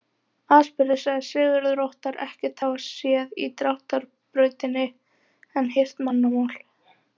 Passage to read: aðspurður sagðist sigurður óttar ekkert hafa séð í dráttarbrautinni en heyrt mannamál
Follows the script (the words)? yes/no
yes